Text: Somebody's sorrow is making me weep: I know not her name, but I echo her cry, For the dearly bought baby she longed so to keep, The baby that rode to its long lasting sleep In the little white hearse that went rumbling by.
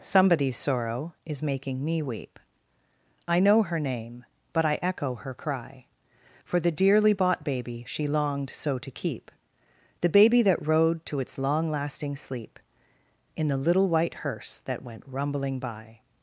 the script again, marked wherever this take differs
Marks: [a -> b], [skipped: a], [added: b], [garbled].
Somebody's sorrow is making me weep: I know [skipped: not] her name, but I echo her cry, For the dearly bought baby she longed so to keep, The baby that rode to its long lasting sleep In the little white hearse that went rumbling by.